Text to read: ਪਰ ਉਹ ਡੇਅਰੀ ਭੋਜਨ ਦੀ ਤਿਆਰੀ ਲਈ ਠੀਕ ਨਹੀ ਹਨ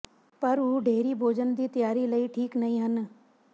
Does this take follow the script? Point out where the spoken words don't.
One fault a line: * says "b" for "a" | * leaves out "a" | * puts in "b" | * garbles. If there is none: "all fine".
all fine